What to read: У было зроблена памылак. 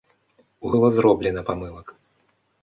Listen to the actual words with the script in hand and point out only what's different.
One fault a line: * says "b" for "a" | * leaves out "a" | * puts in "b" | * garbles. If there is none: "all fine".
all fine